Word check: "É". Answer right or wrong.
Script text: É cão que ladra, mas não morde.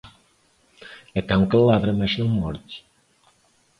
right